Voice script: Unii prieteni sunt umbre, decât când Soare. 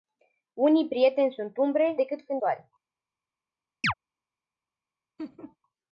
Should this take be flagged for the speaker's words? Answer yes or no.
no